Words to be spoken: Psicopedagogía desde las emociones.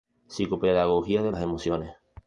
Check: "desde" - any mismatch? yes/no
yes